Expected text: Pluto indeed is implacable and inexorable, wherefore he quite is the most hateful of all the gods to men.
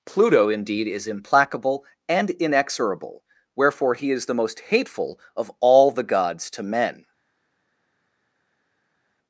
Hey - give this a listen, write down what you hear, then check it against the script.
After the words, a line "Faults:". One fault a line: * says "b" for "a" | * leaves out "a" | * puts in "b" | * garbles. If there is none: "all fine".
Pluto indeed is implacable and inexorable, wherefore he is the most hateful of all the gods to men.
Faults:
* leaves out "quite"